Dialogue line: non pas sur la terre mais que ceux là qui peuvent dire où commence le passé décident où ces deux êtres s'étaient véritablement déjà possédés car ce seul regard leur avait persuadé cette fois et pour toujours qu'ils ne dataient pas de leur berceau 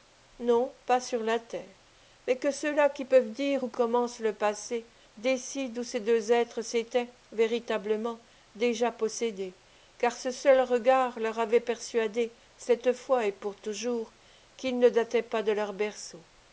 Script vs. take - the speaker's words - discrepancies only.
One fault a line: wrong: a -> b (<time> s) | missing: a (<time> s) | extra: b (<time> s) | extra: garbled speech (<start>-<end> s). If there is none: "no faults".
no faults